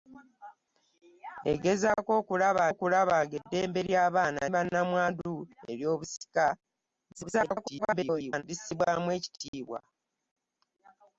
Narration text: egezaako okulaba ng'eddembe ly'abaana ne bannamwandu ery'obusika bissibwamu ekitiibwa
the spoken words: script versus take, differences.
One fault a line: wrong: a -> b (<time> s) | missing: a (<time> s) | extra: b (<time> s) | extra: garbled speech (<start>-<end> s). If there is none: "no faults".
extra: okulaba (2.7 s)
missing: ne (4.4 s)
extra: garbled speech (7.1-8.4 s)